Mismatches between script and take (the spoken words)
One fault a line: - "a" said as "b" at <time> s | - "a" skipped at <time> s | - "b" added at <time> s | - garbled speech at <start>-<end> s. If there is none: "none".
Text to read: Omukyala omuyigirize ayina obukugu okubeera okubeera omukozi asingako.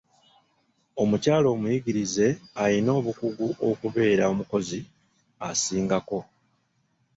- "okubeera" skipped at 4.2 s